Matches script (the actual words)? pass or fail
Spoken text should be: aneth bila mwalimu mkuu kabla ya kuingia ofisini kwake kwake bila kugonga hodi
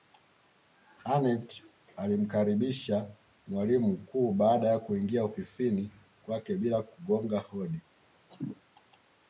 fail